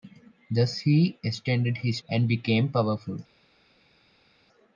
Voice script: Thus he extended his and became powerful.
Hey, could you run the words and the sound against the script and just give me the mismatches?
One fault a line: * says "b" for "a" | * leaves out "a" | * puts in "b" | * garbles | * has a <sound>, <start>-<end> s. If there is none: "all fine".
all fine